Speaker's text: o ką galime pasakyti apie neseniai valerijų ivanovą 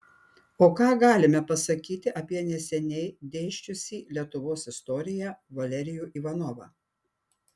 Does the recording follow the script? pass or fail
fail